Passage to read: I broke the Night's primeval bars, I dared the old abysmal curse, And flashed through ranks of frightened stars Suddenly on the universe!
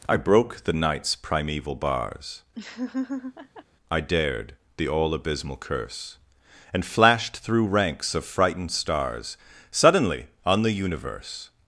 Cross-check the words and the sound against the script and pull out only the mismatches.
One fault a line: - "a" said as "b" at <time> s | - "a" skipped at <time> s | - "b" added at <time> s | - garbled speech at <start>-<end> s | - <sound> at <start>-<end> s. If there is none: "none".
- laugh at 2.5-3.6 s
- "old" said as "all" at 4.9 s